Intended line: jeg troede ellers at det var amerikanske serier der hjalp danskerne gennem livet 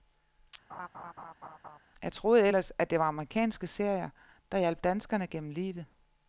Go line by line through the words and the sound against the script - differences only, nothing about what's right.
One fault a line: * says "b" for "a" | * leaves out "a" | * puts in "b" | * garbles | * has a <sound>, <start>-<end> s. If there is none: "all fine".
* has a laugh, 0.7-1.8 s